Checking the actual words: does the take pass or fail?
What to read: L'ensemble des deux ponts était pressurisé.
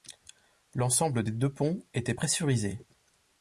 pass